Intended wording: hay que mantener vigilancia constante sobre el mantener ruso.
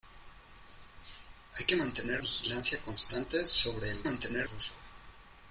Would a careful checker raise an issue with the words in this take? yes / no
no